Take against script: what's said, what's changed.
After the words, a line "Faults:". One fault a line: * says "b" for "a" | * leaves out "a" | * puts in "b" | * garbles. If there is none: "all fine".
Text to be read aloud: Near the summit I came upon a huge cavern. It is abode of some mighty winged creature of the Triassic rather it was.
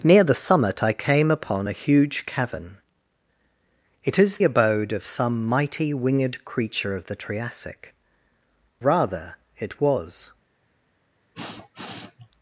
Near the summit I came upon a huge cavern. It is abode of some mighty winged creature of the Triassic rather it was.
Faults:
all fine